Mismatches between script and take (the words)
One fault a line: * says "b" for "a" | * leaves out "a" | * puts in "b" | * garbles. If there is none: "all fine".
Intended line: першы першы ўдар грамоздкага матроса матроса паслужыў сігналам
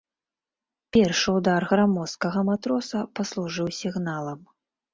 * leaves out "першы"
* leaves out "матроса"